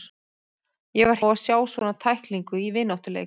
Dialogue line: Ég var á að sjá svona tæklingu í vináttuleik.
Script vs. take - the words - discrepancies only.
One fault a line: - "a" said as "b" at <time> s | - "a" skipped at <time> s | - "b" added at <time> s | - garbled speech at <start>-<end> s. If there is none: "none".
none